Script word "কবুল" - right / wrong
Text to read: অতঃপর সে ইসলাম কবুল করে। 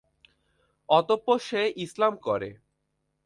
wrong